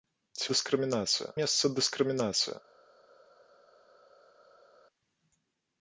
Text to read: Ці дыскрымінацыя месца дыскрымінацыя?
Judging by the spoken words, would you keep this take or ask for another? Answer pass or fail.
pass